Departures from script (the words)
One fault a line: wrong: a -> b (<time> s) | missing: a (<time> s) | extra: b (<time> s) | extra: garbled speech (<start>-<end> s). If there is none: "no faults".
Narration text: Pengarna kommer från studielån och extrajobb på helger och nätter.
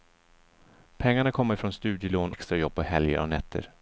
missing: och (2.3 s)